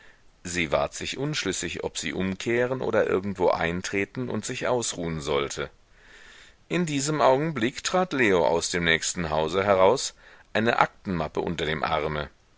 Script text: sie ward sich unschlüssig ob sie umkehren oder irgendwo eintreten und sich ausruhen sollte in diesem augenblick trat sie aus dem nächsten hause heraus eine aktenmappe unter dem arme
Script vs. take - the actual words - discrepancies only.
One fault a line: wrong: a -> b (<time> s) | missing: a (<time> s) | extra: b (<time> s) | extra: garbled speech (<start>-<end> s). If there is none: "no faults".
wrong: sie -> leo (8.1 s)